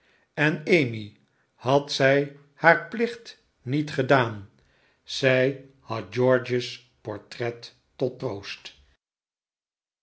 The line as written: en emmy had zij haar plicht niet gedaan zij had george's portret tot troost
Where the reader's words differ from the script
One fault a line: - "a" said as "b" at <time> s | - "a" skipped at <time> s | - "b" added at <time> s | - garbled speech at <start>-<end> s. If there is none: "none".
none